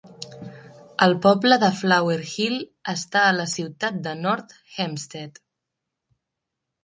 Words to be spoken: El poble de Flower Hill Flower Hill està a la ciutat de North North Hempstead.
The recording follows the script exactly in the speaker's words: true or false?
false